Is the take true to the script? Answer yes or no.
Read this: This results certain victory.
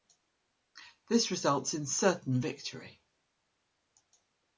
no